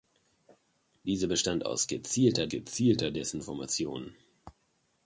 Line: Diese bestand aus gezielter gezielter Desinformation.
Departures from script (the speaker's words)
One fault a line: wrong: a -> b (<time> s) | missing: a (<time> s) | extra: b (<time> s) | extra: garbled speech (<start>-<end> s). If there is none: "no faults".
no faults